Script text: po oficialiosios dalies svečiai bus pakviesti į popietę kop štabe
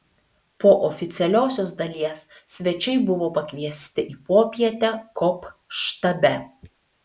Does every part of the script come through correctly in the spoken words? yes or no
no